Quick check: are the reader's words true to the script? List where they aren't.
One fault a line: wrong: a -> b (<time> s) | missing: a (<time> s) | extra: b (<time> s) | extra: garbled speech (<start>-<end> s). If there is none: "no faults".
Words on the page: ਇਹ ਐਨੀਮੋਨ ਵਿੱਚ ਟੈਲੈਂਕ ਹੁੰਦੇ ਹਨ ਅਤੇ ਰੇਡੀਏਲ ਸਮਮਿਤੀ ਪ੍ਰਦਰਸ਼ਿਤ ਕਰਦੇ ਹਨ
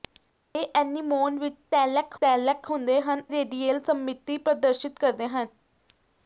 extra: ਟੈਲੈਂਕ (2.2 s)
missing: ਅਤੇ (3.2 s)